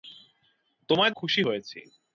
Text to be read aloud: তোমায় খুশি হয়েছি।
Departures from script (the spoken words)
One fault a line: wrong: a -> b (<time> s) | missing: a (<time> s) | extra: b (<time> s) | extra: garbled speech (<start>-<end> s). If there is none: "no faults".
no faults